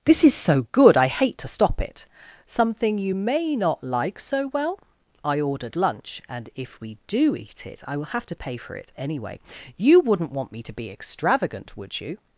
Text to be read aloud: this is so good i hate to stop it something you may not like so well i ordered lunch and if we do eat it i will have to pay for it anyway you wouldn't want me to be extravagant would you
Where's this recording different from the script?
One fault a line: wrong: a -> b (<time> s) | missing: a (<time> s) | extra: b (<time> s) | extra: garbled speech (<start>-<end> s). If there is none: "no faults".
no faults